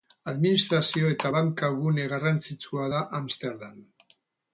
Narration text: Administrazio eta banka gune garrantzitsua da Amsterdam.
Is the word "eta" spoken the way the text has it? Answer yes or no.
yes